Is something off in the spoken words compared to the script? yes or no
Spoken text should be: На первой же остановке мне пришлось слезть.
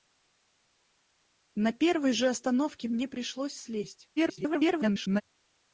yes